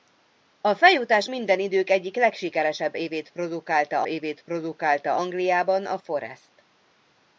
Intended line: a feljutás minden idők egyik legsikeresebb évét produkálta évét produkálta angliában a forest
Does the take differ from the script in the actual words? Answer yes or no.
no